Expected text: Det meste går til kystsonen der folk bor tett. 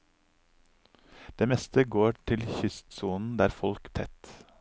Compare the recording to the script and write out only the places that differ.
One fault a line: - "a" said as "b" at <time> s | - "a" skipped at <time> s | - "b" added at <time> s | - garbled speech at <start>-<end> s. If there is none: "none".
- "bor" skipped at 3.9 s